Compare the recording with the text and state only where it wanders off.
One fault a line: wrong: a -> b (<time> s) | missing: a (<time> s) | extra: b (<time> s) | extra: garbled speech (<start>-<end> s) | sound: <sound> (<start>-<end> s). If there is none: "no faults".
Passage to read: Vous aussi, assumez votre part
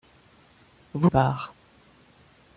missing: aussi assumez votre (1.1 s)